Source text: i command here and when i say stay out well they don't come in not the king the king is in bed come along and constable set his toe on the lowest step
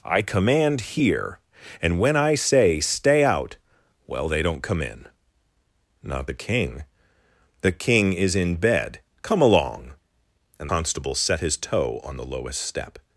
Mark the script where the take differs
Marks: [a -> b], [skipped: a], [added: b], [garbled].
i command here and when i say stay out well they don't come in not the king the king is in bed come along and constable set his toe on the lowest step